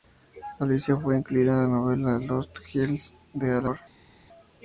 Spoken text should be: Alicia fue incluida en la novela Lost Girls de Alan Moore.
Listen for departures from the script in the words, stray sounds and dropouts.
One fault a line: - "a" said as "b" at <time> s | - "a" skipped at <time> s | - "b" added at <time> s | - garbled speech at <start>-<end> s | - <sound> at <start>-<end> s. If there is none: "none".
none